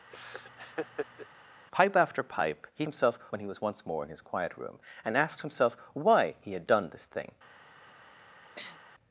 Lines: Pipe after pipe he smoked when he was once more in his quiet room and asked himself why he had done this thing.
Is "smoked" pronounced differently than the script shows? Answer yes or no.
yes